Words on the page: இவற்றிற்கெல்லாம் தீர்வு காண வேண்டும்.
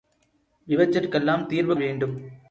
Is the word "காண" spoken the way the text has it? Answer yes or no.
no